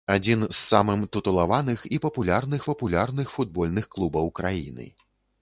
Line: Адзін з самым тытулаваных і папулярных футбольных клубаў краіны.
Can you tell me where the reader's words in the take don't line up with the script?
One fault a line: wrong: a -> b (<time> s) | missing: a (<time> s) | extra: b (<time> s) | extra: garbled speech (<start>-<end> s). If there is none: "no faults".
extra: папулярных (2.7 s)